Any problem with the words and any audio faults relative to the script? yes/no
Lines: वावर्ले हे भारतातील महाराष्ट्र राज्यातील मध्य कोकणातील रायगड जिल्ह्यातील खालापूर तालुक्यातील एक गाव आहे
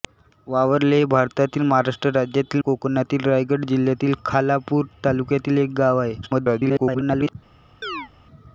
yes